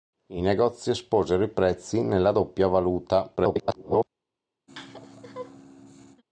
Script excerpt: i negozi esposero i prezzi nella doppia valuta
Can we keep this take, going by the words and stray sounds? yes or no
no